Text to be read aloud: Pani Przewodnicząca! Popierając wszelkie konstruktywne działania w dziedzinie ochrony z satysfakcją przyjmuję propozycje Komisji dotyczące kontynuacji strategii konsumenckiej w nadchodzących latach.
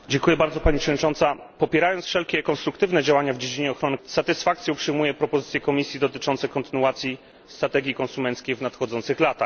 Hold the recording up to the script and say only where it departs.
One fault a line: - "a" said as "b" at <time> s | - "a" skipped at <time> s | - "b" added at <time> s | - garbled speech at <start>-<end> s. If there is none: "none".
none